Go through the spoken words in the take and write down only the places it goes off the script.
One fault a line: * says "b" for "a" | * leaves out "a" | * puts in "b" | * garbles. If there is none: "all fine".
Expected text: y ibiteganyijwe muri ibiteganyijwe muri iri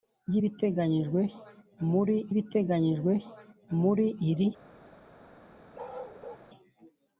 all fine